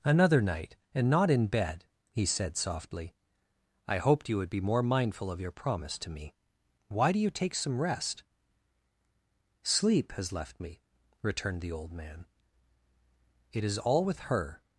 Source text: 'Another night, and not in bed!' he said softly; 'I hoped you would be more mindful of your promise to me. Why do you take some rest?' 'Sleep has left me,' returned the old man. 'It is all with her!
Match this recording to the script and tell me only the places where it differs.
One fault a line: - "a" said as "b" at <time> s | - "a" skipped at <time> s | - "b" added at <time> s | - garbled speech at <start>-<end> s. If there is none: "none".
none